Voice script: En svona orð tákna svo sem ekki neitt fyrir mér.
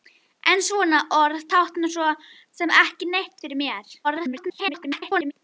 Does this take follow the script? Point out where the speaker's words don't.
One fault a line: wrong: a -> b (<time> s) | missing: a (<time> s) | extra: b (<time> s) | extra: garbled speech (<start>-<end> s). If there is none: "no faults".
extra: garbled speech (4.0-5.3 s)